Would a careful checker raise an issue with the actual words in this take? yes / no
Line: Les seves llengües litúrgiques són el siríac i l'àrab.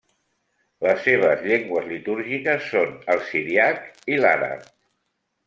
no